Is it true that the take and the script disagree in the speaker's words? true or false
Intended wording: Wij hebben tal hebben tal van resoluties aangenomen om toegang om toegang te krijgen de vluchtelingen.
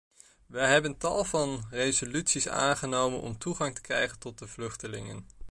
true